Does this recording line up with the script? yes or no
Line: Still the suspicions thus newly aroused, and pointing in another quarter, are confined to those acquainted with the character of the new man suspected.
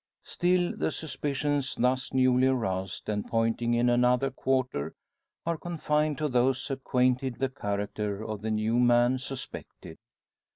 no